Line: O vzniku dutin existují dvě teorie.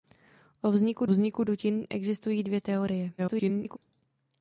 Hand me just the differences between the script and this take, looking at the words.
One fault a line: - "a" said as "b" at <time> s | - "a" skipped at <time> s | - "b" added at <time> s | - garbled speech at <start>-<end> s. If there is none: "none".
- "vzniku" added at 1.1 s
- garbled speech at 3.2-3.8 s